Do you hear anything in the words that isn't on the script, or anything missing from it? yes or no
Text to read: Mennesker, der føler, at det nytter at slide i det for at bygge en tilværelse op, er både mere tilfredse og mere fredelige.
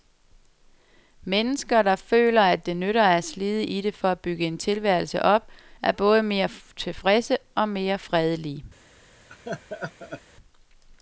no